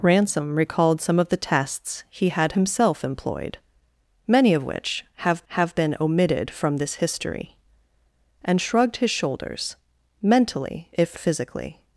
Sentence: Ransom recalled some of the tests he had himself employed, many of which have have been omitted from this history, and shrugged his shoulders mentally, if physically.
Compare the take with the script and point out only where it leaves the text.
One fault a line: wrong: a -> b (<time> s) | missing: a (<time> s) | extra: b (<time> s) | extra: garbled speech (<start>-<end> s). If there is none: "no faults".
no faults